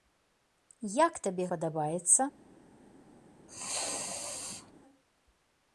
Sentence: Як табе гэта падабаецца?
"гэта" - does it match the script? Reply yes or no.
no